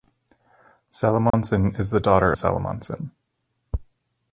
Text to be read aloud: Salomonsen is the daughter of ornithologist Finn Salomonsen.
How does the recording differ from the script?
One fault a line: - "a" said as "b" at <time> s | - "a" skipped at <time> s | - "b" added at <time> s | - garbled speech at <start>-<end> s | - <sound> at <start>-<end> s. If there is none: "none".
- dropout at 1.3-1.3 s
- "of ornithologist Finn" skipped at 2.3 s